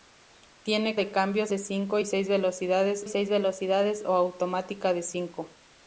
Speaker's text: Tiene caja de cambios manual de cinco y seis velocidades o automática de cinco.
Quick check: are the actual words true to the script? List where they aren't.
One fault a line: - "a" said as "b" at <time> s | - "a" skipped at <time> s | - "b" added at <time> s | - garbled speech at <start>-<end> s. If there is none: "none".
- "caja" skipped at 1.0 s
- "manual" skipped at 1.5 s
- "seis velocidades" added at 3.1 s